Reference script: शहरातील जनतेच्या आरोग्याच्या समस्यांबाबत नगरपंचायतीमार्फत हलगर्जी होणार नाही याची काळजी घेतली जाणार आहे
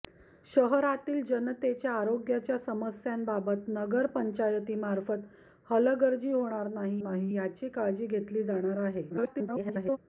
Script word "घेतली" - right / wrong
right